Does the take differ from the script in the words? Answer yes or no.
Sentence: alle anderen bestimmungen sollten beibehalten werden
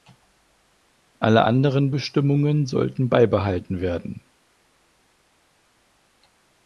no